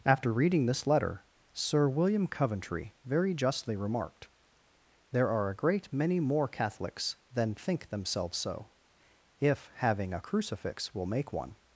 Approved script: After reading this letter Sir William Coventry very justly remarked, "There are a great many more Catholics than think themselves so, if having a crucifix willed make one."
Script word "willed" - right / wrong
wrong